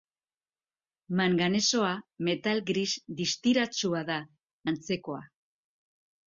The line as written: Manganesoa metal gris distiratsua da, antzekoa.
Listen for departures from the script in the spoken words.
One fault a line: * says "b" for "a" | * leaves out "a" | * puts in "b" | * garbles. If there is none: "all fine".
all fine